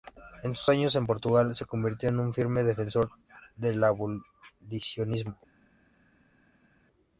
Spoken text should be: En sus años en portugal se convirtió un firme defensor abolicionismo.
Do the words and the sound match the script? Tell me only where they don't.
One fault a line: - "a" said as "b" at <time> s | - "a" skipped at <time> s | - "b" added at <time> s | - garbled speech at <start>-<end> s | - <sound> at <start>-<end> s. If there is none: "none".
- "en" added at 2.1 s
- "del" added at 3.6 s